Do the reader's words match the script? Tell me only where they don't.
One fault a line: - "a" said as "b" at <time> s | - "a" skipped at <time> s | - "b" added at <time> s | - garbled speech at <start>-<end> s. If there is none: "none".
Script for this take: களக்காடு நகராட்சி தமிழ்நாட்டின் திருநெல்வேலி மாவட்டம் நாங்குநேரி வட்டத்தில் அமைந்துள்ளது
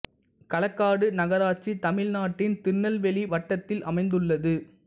- "மாவட்டம் நாங்குநேரி" skipped at 3.2 s